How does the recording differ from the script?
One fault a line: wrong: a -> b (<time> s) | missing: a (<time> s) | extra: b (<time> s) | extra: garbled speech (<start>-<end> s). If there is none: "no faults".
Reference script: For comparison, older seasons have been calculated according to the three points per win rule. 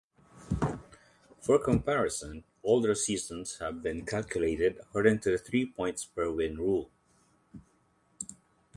no faults